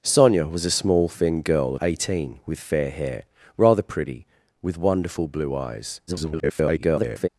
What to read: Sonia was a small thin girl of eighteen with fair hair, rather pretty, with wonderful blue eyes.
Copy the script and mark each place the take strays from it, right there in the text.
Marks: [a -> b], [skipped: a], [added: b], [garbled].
Sonia was a small thin girl [skipped: of] eighteen with fair hair, rather pretty, with wonderful blue eyes. [garbled]